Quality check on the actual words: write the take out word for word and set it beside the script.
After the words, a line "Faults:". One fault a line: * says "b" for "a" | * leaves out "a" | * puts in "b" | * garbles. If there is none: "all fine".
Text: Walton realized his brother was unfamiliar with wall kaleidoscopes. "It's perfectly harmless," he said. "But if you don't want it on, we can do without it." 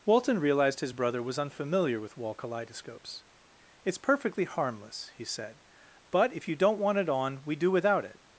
Walton realized his brother was unfamiliar with wall kaleidoscopes. "It's perfectly harmless," he said. "But if you don't want it on, we do without it."
Faults:
* leaves out "can"